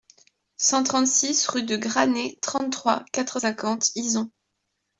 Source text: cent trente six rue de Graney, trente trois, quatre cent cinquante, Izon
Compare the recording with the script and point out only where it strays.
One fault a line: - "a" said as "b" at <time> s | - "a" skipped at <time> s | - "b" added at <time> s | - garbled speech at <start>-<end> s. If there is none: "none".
- "cent" skipped at 3.4 s